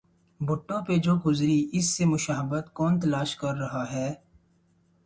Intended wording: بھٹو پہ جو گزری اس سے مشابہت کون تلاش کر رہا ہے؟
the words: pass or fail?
pass